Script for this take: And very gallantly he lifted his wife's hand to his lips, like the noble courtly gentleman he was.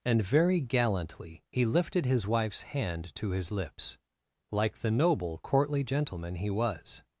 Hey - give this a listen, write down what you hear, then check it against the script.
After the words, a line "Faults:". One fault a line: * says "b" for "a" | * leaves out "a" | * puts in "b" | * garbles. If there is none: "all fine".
And very gallantly he lifted his wife's hand to his lips, like the noble courtly gentleman he was.
Faults:
all fine